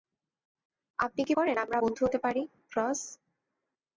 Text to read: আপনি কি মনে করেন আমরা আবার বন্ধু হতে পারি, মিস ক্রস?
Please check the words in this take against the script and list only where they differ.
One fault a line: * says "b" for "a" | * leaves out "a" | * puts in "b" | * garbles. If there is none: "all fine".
* leaves out "মনে"
* leaves out "আবার"
* leaves out "মিস"